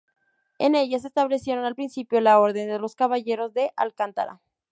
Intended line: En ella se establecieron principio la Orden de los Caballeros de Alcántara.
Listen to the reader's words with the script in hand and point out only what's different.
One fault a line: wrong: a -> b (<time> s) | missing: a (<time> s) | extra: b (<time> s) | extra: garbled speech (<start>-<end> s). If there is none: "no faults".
extra: al (1.6 s)